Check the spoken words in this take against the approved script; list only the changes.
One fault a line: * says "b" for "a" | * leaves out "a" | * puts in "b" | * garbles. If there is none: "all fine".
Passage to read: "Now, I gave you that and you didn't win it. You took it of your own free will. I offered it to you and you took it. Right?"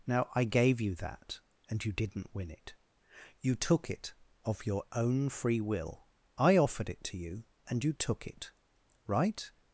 all fine